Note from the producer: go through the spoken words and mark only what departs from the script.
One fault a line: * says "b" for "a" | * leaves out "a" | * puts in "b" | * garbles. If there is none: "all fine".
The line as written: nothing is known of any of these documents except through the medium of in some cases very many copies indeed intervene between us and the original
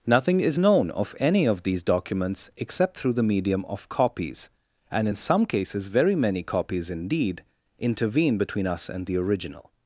* puts in "copies and"